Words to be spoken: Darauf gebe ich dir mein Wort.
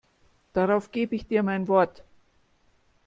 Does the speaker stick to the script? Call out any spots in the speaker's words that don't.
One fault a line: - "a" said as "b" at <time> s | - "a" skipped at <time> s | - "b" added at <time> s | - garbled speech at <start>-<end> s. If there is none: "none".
none